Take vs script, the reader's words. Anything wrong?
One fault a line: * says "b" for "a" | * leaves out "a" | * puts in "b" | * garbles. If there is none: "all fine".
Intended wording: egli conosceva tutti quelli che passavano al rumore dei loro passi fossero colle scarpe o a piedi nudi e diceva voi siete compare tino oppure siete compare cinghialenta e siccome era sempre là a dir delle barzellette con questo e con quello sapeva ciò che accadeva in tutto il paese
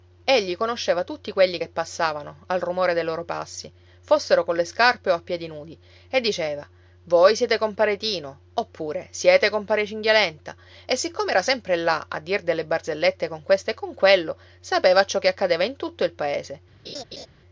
all fine